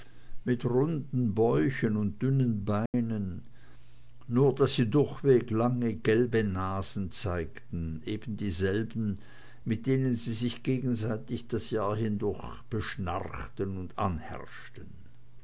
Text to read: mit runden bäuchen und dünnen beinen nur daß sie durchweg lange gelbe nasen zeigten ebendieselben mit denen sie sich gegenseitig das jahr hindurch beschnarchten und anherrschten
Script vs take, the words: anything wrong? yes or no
no